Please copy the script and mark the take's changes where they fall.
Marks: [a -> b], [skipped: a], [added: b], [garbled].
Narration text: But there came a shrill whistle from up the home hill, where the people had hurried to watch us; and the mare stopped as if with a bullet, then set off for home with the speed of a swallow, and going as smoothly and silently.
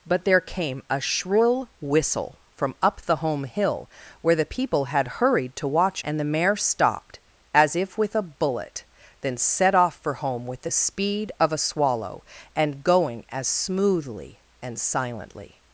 But there came a shrill whistle from up the home hill, where the people had hurried to watch [skipped: us;] and the mare stopped as if with a bullet, then set off for home with the speed of a swallow, and going as smoothly and silently.